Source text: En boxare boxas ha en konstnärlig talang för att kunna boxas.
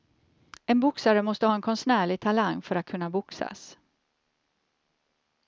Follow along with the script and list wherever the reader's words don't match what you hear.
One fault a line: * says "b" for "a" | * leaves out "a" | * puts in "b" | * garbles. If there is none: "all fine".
* says "måste" for "boxas"